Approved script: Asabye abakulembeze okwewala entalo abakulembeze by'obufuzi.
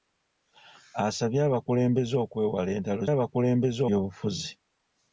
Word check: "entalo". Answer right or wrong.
right